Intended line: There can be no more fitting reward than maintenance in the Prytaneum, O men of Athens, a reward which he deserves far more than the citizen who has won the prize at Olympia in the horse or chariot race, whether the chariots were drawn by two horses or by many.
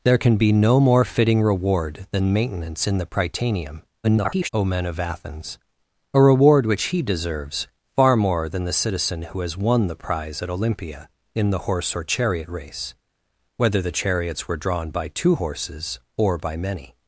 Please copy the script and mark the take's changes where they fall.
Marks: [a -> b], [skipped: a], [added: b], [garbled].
There can be no more fitting reward than maintenance in the Prytaneum, [garbled] O men of Athens, a reward which he deserves far more than the citizen who has won the prize at Olympia in the horse or chariot race, whether the chariots were drawn by two horses or by many.